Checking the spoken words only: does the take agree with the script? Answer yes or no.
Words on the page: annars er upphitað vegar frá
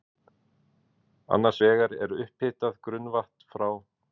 no